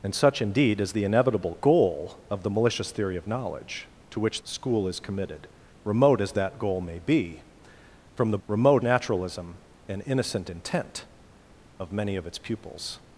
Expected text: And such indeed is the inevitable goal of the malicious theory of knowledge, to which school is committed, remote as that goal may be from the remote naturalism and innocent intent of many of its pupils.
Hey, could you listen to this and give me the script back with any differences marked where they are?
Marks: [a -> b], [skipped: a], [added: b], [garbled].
And such indeed is the inevitable goal of the malicious theory of knowledge, to which school is committed, remote as that goal may be from the remote naturalism and innocent intent of many of its pupils.